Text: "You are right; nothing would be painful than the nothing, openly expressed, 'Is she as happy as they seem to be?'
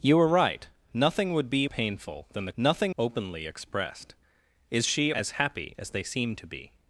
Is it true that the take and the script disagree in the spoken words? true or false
false